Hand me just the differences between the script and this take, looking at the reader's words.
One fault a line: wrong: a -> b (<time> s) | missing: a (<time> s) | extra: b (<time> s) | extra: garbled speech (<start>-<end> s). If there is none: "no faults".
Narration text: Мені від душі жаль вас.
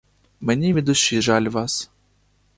no faults